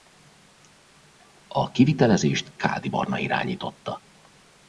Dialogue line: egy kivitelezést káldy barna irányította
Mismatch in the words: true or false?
true